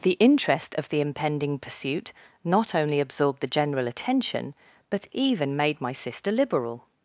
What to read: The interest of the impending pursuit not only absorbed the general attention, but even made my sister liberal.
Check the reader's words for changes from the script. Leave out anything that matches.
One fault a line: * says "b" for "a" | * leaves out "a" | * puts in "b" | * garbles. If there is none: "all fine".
all fine